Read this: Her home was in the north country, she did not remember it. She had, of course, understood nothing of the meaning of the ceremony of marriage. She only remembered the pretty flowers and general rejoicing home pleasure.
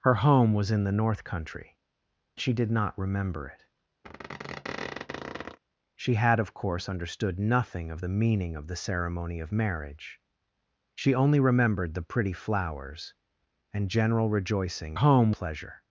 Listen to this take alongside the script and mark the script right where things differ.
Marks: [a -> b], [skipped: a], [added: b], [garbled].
Her home was in the north country, she did not remember it. She had, of course, understood nothing of the meaning of the ceremony of marriage. She only remembered the pretty flowers and general rejoicing home pleasure.